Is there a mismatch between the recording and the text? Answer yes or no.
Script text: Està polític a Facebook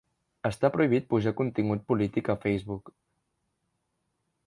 yes